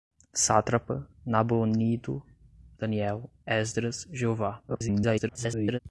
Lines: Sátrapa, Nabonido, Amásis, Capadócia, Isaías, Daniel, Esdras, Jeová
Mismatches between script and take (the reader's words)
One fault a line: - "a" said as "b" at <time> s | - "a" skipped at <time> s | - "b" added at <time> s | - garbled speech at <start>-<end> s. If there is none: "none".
- "Amásis Capadócia Isaías" skipped at 2.2 s
- garbled speech at 4.7-5.8 s